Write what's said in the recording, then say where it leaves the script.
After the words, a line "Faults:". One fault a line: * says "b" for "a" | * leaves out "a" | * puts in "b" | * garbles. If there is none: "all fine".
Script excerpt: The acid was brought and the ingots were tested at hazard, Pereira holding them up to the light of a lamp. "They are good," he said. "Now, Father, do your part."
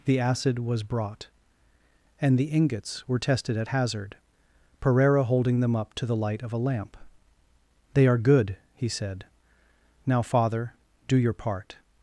The acid was brought and the ingots were tested at hazard, Pereira holding them up to the light of a lamp. "They are good," he said. "Now, Father, do your part."
Faults:
all fine